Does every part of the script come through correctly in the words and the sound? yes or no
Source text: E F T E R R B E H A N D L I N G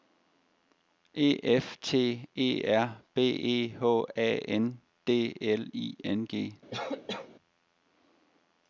no